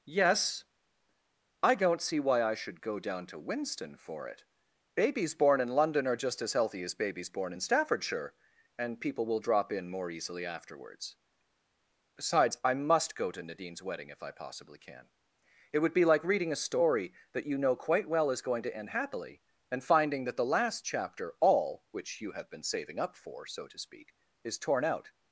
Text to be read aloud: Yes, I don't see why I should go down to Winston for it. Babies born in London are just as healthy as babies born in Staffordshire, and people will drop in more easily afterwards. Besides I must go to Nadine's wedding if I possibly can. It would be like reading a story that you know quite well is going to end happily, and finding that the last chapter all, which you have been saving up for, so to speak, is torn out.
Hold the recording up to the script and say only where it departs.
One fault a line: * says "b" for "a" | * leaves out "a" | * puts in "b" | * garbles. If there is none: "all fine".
all fine